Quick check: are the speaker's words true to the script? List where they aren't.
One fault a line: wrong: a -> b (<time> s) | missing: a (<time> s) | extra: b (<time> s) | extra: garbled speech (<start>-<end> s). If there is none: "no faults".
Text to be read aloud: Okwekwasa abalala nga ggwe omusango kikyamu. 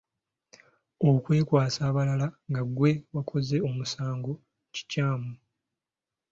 extra: wakoze (3.1 s)